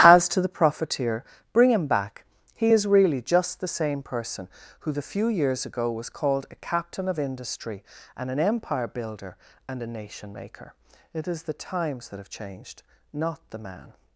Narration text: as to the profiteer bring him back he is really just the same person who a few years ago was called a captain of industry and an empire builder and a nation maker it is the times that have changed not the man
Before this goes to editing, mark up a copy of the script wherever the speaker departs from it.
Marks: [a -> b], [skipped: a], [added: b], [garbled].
as to the profiteer bring him back he is really just the same person who [a -> the] few years ago was called a captain of industry and an empire builder and a nation maker it is the times that have changed not the man